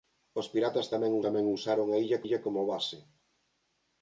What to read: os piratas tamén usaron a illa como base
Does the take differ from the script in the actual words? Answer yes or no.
yes